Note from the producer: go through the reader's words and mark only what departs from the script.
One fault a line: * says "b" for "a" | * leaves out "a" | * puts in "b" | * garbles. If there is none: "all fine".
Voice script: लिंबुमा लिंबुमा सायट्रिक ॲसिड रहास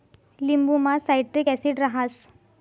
* leaves out "लिंबुमा"